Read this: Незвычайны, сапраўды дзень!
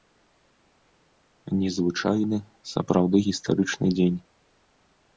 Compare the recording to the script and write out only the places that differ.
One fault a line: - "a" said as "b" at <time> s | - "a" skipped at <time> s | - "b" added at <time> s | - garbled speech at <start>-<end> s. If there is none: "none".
- "гістарычны" added at 3.2 s